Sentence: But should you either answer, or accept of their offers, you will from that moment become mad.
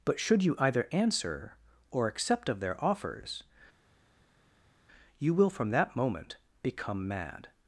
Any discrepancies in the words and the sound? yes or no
no